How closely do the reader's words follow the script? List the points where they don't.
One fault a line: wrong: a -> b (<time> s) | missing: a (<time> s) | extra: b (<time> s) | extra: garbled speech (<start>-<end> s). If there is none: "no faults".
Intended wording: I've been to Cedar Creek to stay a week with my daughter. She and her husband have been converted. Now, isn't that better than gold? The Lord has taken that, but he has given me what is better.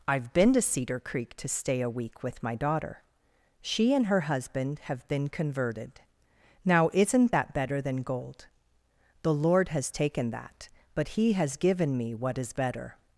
no faults